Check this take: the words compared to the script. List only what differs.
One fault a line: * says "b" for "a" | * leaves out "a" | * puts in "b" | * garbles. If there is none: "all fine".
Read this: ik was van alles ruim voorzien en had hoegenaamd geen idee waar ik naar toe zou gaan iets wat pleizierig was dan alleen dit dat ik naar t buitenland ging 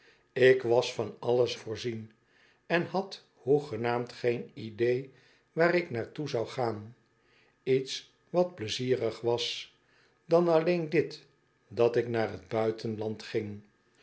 * leaves out "ruim"